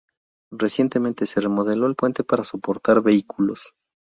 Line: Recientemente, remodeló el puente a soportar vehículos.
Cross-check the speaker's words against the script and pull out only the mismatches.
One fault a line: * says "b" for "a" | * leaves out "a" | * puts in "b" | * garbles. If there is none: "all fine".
* puts in "se"
* says "para" for "a"